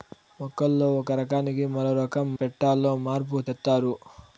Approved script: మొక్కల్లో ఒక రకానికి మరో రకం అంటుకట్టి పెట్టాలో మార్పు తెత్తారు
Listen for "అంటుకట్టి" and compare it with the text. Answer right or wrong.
wrong